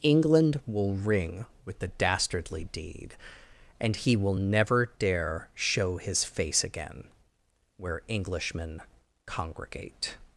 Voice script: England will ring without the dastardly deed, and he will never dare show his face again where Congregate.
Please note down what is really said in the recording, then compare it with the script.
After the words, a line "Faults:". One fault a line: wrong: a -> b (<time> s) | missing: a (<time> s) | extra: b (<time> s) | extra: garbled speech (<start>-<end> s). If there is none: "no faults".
England will ring with the dastardly deed, and he will never dare show his face again where Englishmen congregate.
Faults:
wrong: without -> with (1.6 s)
extra: Englishmen (8.1 s)